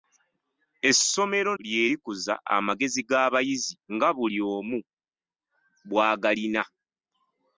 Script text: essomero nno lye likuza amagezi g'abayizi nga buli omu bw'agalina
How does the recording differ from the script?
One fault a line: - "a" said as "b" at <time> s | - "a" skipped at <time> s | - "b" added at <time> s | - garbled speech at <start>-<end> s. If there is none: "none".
- "nno" skipped at 1.5 s